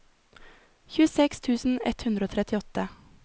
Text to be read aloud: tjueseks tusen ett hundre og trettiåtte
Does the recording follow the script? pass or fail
pass